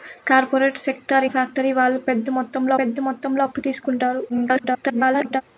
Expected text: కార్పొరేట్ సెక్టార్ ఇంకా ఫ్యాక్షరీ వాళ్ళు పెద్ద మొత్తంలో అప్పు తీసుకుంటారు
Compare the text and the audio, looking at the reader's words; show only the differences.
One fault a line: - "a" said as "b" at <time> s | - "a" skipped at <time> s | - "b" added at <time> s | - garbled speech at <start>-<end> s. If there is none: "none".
- "ఇంకా" skipped at 1.3 s
- "పెద్ద మొత్తంలో" added at 2.8 s
- garbled speech at 4.3-5.4 s